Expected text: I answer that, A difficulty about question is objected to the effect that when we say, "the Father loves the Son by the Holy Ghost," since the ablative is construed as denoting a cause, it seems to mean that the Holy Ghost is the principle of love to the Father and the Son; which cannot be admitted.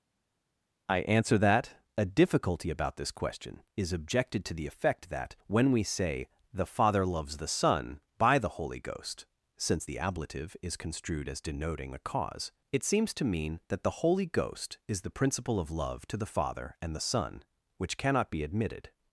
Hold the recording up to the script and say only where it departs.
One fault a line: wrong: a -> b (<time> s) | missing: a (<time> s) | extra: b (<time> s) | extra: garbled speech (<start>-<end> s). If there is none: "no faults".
extra: this (3.0 s)